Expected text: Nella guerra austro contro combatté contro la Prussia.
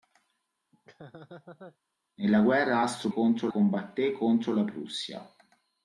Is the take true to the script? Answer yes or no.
yes